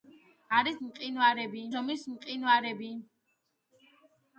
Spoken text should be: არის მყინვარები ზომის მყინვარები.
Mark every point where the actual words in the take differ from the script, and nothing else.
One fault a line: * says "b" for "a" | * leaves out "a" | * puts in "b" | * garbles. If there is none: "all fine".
all fine